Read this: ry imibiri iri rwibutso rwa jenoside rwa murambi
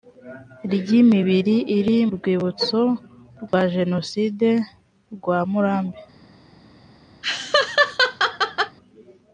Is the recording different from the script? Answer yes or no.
no